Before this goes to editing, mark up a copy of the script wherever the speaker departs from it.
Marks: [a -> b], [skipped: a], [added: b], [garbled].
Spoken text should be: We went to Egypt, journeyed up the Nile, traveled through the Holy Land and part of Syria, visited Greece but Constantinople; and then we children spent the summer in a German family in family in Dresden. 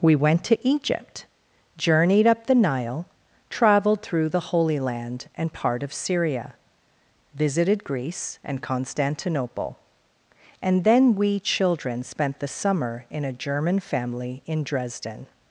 We went to Egypt, journeyed up the Nile, traveled through the Holy Land and part of Syria, visited Greece [but -> and] Constantinople; and then we children spent the summer in a German family in [skipped: family in] Dresden.